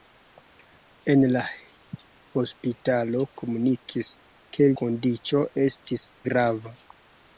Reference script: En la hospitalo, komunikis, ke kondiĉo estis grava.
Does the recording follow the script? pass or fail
pass